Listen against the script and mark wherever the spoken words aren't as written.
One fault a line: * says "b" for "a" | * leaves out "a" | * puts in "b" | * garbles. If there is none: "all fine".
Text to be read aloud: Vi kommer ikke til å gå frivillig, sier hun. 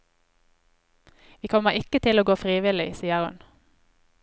all fine